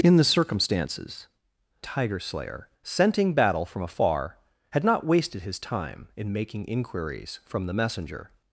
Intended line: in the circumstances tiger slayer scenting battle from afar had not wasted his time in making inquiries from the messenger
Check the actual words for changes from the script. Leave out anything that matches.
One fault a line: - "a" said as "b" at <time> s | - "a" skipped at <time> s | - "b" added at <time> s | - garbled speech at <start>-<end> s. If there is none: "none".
none